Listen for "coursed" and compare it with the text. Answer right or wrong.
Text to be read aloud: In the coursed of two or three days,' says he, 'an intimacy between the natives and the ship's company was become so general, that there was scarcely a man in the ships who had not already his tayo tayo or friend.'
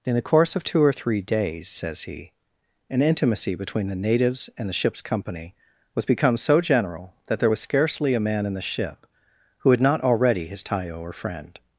wrong